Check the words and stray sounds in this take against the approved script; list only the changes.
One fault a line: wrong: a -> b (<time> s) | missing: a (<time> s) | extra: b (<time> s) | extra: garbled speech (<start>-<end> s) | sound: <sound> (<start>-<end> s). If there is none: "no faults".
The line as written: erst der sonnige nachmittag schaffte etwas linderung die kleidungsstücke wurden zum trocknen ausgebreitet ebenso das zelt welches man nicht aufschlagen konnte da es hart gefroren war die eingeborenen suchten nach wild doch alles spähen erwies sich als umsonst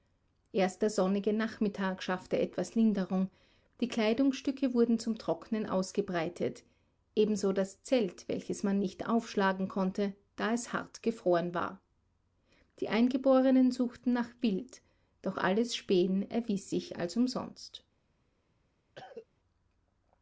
sound: cough (19.0-19.3 s)